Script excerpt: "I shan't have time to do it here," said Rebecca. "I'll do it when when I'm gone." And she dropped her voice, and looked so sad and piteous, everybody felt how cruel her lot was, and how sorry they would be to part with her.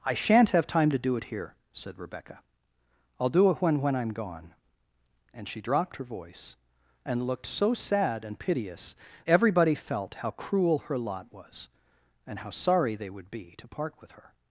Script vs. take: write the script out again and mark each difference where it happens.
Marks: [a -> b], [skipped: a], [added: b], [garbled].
"I shan't have time to do it here," said Rebecca. "I'll do it when when I'm gone." And she dropped her voice, and looked so sad and piteous, everybody felt how cruel her lot was, and how sorry they would be to part with her.